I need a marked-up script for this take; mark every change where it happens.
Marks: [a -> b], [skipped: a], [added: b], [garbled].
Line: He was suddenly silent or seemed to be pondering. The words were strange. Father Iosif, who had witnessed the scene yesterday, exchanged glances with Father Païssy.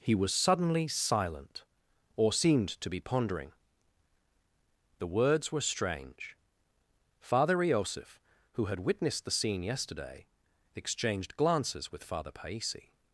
He was suddenly silent or seemed to be pondering. The words were strange. Father Iosif, who had witnessed the scene yesterday, exchanged glances with Father Païssy.